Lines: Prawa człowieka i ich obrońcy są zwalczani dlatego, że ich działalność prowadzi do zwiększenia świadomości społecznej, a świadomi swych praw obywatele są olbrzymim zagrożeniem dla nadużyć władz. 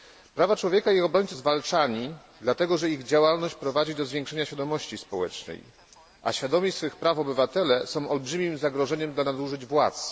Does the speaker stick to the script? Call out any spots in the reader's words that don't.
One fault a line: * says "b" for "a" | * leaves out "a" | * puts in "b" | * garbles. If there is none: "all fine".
* leaves out "są"